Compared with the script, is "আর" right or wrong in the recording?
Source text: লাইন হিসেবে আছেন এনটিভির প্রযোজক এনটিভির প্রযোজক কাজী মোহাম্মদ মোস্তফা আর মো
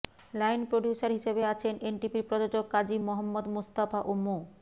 wrong